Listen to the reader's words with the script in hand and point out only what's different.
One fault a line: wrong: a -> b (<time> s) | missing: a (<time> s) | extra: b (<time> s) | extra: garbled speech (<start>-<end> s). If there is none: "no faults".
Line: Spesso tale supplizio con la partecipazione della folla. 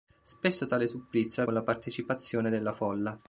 no faults